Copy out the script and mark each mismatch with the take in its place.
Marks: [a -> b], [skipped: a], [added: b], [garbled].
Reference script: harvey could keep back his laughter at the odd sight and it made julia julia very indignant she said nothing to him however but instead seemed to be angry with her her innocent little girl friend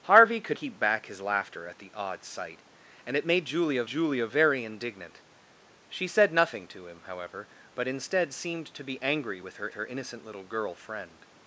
harvey could keep back his laughter at the odd sight and it made julia julia very indignant she said nothing to him however but instead seemed to be angry with her her innocent little girl friend